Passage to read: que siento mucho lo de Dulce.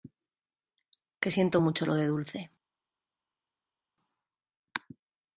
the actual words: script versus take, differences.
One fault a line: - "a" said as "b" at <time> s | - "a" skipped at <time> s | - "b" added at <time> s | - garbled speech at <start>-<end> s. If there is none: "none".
none